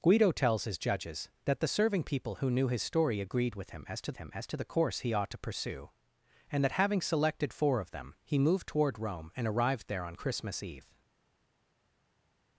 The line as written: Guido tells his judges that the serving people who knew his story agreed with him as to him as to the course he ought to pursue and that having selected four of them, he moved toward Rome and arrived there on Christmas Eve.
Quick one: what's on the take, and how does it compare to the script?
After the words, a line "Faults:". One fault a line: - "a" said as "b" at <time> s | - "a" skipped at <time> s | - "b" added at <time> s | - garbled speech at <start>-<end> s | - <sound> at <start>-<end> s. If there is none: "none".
Guido tells his judges that the serving people who knew his story agreed with him as to him as to the course he ought to pursue and that having selected four of them, he moved toward Rome and arrived there on Christmas Eve.
Faults:
none